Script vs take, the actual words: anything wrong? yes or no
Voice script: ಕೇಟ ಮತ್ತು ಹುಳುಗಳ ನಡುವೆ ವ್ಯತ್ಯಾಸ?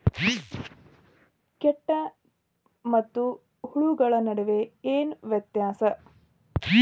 yes